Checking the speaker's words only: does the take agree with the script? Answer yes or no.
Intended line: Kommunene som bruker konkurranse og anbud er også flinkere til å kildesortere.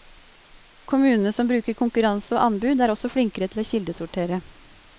yes